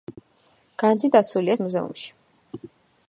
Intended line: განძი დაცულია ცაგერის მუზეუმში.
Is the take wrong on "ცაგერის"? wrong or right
wrong